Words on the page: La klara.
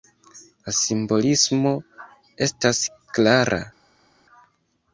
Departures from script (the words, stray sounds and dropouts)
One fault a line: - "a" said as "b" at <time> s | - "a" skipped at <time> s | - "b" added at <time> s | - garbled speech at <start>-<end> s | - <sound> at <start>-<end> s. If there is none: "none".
- "simbolismo estas" added at 0.8 s